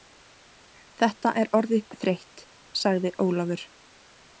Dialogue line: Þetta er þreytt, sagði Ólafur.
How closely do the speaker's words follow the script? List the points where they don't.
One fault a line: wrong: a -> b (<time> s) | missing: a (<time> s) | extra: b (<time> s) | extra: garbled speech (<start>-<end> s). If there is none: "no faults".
extra: orðið (1.6 s)